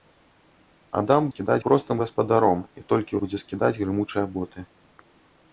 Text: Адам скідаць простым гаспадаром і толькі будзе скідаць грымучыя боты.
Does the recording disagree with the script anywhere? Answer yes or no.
no